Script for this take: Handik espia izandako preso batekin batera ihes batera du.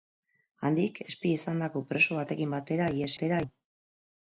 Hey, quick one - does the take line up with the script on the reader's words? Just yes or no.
yes